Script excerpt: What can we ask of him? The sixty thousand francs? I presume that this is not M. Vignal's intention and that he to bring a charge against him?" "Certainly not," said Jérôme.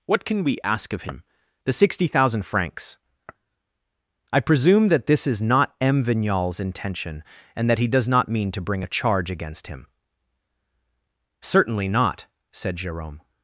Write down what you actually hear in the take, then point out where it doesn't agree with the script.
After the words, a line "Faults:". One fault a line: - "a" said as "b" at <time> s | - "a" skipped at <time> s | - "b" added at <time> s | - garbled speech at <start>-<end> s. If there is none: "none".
What can we ask of him? The sixty thousand francs? I presume that this is not M. Vignal's intention and that he does not mean to bring a charge against him?" "Certainly not," said Jérôme.
Faults:
- "does not mean" added at 7.9 s